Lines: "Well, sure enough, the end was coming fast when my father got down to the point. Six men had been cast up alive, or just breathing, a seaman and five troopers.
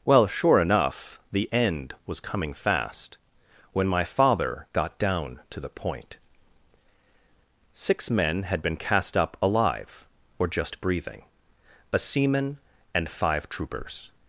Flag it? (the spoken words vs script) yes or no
no